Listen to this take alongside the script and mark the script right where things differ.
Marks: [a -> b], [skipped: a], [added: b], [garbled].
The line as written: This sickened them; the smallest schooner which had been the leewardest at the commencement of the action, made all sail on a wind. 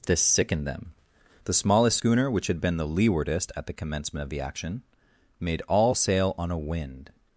This sickened them; the smallest schooner which had been the leewardest at the commencement of the action, made all sail on a wind.